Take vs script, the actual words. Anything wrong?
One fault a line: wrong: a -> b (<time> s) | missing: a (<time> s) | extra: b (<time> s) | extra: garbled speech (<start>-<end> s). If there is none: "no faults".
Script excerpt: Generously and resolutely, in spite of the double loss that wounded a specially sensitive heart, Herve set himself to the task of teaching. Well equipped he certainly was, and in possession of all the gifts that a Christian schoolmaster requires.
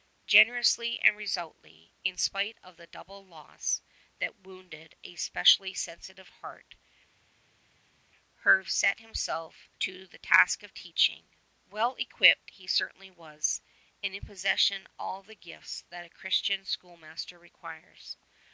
missing: of (14.9 s)